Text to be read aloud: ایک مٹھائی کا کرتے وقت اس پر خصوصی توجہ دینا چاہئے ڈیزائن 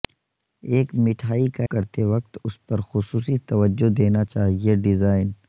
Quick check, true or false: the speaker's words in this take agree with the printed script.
true